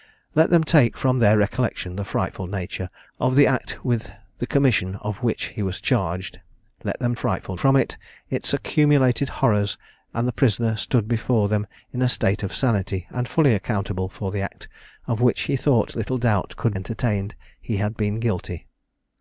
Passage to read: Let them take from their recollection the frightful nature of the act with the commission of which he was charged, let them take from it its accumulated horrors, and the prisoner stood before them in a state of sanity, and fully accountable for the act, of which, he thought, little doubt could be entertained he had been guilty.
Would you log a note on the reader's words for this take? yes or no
yes